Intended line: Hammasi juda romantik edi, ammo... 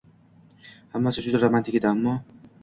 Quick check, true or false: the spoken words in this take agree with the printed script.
true